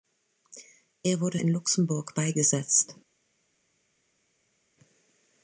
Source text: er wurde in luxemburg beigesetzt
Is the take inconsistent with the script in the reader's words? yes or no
no